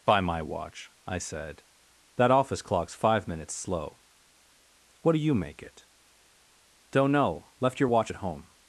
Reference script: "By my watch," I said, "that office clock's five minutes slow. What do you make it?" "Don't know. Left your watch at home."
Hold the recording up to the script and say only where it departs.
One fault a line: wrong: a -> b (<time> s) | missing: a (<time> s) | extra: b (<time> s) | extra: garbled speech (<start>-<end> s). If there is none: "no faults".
no faults